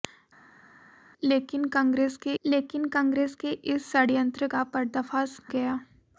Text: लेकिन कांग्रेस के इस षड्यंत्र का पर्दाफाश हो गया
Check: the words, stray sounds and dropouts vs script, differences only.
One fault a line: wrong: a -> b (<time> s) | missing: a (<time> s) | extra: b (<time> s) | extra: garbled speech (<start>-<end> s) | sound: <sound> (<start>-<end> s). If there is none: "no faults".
extra: लेकिन कांग्रेस के (2.4 s)
missing: हो (5.4 s)